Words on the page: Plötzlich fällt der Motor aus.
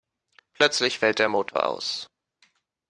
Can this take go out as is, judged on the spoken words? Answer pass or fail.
pass